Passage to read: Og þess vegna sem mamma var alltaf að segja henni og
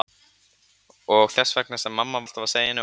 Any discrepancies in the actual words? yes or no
yes